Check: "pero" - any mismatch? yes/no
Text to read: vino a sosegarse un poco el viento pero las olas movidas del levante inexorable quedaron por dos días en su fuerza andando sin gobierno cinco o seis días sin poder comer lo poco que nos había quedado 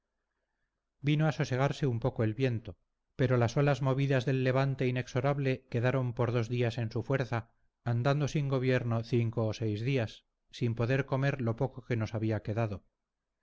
no